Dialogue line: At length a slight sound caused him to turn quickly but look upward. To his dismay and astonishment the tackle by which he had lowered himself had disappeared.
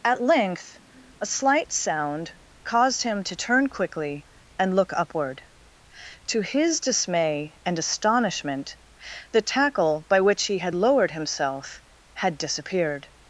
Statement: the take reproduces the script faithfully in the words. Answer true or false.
false